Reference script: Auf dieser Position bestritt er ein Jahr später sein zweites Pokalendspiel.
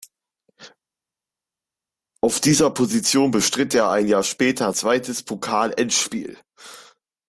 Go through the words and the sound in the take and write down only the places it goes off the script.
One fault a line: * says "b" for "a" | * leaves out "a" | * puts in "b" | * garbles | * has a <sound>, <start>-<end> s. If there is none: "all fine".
* leaves out "sein"